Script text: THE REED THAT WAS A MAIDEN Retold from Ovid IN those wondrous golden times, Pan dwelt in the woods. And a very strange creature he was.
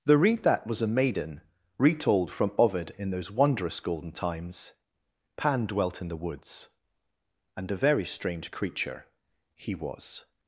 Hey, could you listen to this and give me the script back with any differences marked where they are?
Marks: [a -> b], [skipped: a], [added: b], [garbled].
THE REED THAT WAS A MAIDEN Retold from Ovid IN those wondrous golden times, Pan dwelt in the woods. And a very strange creature he was.